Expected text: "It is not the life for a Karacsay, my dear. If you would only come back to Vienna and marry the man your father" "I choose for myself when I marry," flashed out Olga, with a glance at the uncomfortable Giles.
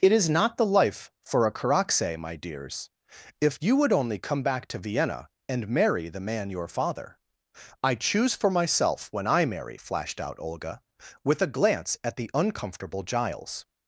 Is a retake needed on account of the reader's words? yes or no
yes